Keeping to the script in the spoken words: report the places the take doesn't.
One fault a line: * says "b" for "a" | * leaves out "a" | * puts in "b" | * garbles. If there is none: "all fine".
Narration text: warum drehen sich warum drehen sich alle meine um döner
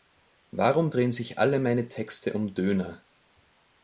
* leaves out "warum drehen sich"
* puts in "texte"